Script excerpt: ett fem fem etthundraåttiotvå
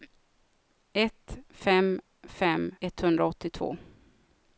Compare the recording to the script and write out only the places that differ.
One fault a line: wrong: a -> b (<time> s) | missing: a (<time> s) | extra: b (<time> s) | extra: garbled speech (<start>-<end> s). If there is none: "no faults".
no faults